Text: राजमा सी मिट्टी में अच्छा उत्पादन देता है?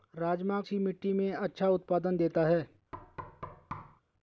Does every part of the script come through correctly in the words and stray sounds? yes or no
no